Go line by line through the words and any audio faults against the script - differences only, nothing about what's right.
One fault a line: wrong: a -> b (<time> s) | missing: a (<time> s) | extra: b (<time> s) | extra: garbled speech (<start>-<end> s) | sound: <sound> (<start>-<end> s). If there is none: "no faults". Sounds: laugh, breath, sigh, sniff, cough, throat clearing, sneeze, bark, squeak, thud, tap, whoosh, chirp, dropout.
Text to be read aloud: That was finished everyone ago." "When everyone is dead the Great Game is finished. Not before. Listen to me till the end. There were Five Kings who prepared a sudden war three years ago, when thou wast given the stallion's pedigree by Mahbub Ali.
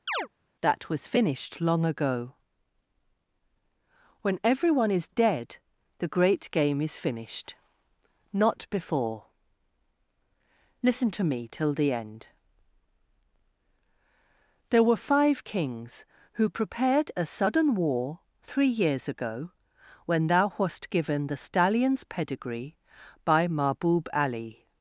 sound: chirp (0.1-0.3 s)
wrong: everyone -> long (1.6 s)